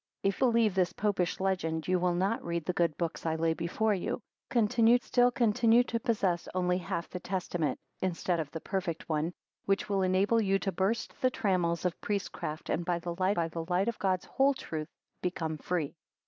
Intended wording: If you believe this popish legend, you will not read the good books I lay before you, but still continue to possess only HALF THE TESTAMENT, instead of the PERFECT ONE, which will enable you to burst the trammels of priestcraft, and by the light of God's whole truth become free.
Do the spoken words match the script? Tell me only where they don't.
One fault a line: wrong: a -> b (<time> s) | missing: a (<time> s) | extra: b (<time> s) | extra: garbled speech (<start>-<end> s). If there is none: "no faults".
missing: you (0.4 s)
wrong: but -> continue (4.5 s)
extra: by the light (13.3 s)